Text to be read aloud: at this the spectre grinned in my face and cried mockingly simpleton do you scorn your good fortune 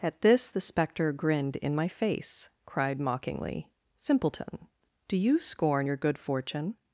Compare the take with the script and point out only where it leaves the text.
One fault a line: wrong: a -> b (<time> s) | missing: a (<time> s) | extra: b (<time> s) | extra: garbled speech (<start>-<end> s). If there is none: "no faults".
missing: and (2.5 s)